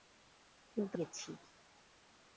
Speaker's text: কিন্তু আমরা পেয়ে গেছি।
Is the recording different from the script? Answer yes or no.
yes